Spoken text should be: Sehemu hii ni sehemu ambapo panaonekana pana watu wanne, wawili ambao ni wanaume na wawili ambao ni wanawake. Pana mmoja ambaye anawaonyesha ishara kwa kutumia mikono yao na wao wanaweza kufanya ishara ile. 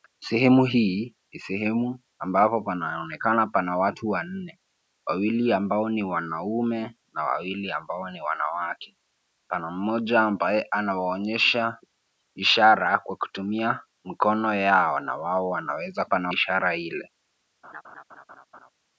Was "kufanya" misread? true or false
true